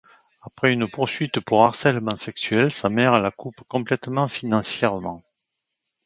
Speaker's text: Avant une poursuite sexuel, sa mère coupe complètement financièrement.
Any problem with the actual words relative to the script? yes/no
yes